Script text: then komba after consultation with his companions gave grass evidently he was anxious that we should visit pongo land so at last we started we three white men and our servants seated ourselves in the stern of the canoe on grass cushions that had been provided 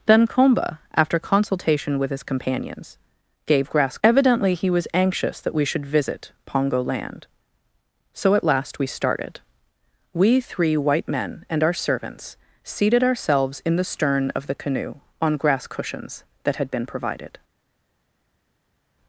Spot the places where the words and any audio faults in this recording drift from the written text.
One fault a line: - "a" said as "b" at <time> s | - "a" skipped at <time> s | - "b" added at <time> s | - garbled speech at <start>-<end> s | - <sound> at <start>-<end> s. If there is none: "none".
none